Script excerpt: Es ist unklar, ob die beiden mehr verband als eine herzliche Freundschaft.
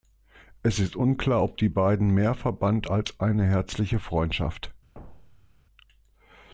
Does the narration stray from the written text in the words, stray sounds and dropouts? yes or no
yes